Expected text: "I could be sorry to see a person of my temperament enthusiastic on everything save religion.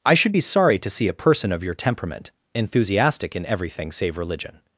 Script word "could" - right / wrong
wrong